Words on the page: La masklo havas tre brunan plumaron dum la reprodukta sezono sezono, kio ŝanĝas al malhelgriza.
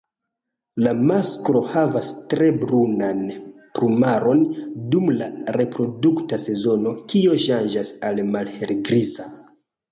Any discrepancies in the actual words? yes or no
yes